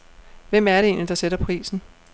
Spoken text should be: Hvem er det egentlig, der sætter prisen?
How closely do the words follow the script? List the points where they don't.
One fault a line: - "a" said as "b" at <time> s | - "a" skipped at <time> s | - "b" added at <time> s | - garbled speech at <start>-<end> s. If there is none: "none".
none